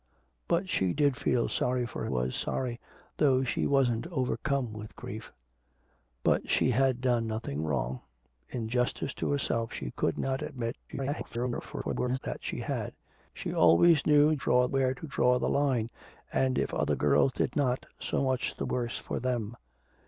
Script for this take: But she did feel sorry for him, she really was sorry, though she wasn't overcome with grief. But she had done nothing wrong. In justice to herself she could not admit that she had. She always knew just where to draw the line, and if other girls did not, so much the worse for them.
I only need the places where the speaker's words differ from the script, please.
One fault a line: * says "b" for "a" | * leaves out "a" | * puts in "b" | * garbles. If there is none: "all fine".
* leaves out "him she really"
* garbles
* says "draw" for "just"